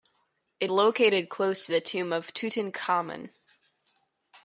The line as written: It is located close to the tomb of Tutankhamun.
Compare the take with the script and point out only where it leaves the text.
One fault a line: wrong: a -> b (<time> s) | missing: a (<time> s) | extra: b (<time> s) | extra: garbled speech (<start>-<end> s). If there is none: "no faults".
missing: is (0.7 s)